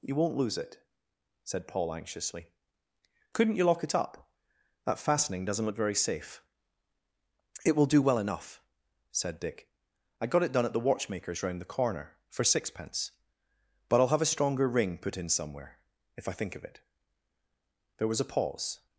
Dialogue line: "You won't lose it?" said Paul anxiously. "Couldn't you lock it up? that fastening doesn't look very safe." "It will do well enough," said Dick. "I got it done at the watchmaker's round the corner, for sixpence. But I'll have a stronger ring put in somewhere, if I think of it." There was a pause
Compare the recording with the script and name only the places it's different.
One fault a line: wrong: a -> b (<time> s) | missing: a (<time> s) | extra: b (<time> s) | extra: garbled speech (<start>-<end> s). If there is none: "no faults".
no faults